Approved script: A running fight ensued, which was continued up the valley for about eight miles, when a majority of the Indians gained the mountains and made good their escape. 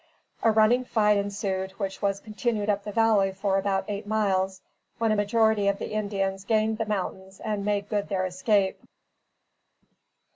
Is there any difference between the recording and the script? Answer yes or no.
no